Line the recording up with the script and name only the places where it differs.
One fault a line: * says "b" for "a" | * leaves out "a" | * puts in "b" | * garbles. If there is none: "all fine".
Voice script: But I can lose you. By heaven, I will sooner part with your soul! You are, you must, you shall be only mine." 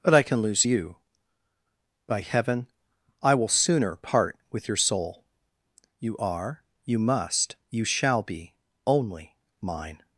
all fine